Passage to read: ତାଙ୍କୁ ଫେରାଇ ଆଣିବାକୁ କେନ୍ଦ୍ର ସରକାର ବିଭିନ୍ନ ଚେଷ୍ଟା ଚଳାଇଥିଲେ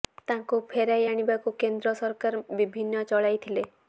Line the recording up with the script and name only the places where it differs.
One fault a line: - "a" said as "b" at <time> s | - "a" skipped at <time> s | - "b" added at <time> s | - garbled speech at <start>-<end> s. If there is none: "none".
- "ଚେଷ୍ଟା" skipped at 3.1 s